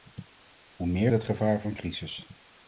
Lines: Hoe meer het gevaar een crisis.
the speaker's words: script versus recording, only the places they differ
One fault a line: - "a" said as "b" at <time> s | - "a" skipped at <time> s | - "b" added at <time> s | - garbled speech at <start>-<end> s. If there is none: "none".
none